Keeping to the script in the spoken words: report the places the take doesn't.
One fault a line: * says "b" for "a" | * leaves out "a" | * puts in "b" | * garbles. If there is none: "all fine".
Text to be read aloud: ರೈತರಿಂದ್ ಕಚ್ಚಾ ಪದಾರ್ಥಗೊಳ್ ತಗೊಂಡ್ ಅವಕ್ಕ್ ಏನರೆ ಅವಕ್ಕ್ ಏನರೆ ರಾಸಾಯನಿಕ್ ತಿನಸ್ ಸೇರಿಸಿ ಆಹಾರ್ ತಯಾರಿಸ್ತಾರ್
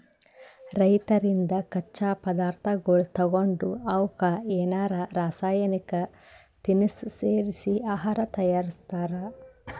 * leaves out "ಅವಕ್ಕ್ ಏನರೆ"